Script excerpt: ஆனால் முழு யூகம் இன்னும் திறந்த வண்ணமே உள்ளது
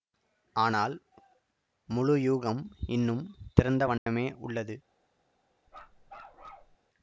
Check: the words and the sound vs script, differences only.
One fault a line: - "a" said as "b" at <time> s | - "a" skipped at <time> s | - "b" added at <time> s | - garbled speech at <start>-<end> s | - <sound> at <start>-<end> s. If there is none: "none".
- dropout at 4.0-4.1 s
- bark at 5.7-6.8 s